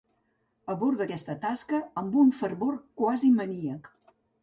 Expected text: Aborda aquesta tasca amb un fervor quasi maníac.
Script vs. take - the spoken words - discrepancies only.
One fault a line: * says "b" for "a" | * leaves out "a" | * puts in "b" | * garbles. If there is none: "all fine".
all fine